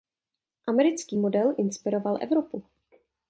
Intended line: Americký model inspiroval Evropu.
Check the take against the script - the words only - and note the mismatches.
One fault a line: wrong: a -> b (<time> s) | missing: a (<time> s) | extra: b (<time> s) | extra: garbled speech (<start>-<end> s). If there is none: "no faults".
no faults